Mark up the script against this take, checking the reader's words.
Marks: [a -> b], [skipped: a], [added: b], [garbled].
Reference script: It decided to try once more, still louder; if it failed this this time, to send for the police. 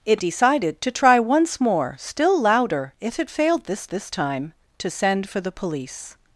It decided to try once more, still louder; if it failed this this time, to send for the police.